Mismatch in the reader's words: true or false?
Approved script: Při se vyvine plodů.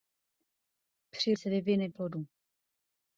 false